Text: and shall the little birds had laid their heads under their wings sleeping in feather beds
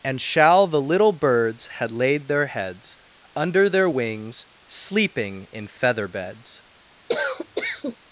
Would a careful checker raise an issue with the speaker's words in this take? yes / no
no